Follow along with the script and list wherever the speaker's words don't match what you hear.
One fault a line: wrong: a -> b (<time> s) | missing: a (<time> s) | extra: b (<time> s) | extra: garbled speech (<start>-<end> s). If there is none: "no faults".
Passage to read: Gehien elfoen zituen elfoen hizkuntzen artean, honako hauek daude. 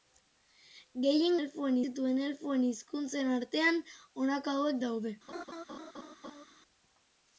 no faults